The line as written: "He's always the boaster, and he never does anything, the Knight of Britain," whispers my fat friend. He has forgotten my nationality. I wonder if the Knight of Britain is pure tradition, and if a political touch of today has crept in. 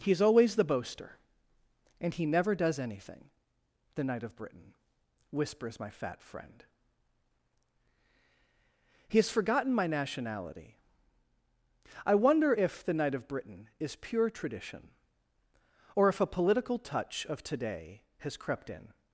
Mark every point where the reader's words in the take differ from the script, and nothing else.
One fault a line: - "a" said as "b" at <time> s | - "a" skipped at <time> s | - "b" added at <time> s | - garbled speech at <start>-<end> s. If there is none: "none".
- "and" said as "or" at 15.9 s